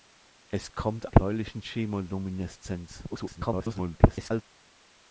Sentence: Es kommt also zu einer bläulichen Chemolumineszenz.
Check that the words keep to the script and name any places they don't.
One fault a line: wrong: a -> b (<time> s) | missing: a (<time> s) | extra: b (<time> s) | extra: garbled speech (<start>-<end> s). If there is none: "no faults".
missing: also zu einer (1.1 s)
extra: garbled speech (3.1-4.4 s)